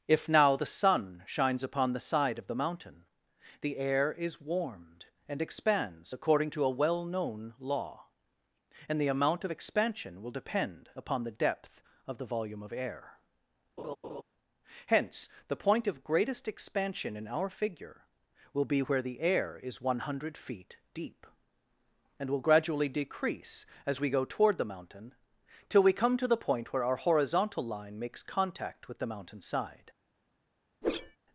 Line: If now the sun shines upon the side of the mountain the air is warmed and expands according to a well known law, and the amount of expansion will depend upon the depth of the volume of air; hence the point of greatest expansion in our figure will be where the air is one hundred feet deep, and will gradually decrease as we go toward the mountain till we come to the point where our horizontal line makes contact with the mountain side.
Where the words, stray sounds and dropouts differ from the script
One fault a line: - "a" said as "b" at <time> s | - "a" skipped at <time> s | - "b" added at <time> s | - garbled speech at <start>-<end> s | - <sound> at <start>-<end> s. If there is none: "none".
- laugh at 13.8-14.2 s
- whoosh at 30.8-31.2 s